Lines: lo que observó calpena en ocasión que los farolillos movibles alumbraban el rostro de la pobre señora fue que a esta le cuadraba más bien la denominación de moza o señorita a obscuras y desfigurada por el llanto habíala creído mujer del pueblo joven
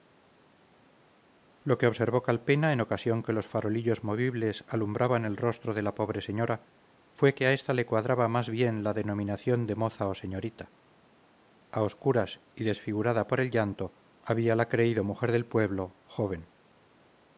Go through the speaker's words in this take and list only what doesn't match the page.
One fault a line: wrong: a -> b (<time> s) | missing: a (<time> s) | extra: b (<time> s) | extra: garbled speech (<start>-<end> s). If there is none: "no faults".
no faults